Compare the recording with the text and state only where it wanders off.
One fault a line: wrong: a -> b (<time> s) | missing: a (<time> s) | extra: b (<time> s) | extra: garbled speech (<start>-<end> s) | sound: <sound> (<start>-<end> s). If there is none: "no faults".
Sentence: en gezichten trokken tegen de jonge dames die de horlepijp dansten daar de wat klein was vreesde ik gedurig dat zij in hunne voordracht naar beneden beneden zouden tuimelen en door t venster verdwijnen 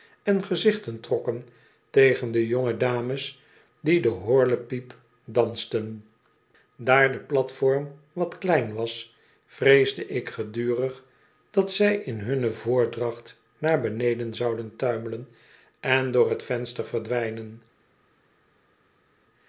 extra: platform (7.2 s)
missing: beneden (14.3 s)